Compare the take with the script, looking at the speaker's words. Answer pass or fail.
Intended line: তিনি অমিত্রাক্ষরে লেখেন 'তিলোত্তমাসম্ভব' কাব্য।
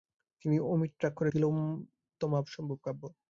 fail